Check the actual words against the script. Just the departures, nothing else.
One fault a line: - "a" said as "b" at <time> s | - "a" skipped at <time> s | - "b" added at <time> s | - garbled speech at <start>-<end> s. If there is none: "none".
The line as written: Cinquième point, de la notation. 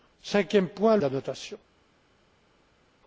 none